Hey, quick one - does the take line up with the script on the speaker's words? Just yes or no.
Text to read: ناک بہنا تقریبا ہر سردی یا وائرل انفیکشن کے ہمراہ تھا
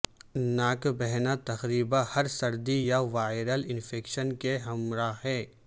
no